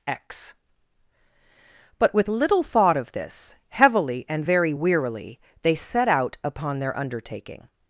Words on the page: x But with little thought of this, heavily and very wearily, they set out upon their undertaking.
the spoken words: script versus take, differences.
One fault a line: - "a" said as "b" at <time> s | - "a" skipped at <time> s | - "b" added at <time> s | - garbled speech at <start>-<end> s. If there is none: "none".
none